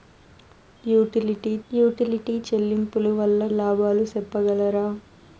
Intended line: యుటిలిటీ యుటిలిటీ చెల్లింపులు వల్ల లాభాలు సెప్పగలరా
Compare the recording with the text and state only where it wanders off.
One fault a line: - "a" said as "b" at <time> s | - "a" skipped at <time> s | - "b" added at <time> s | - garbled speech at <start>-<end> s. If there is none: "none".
none